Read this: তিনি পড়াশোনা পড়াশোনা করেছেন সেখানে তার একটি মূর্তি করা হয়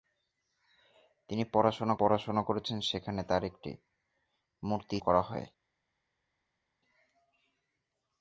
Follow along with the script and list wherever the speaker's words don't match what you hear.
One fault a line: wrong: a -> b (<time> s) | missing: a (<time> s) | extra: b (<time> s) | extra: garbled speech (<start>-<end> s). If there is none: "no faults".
no faults